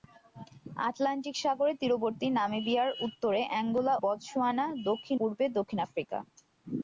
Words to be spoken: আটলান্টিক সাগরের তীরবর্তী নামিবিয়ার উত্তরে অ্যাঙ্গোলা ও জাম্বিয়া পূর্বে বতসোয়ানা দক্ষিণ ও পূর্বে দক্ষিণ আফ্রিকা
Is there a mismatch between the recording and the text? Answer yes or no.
yes